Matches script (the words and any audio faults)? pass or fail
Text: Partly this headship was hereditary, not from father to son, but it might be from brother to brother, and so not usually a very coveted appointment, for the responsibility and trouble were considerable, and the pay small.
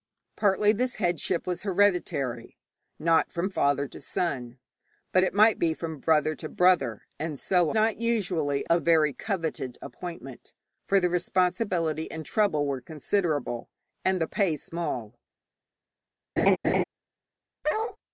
fail